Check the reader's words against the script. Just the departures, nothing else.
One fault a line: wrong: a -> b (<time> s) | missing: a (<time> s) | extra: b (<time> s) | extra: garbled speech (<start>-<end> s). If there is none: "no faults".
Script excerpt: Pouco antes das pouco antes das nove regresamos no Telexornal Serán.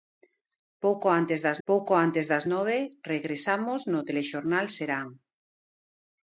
no faults